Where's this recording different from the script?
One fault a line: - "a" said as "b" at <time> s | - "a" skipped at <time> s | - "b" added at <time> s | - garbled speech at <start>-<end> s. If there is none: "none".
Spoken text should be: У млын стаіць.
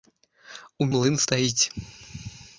none